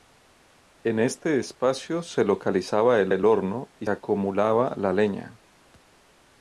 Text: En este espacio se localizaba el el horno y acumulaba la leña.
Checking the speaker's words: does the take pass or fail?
pass